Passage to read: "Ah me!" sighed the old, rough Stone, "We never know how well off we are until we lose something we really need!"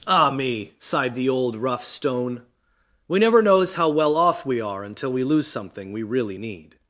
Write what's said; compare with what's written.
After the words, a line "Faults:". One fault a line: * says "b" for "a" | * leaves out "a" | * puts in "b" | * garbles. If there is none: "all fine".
"Ah me!" sighed the old, rough Stone, "We never knows how well off we are until we lose something we really need!"
Faults:
* says "knows" for "know"